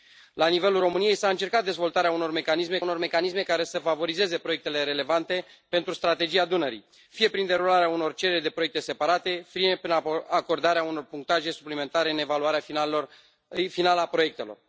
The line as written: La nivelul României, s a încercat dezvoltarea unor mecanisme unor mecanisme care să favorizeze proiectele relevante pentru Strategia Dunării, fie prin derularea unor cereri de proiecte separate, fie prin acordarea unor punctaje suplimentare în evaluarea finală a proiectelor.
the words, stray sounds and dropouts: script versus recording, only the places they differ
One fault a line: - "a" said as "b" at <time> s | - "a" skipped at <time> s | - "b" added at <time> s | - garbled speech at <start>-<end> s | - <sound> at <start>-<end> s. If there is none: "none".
none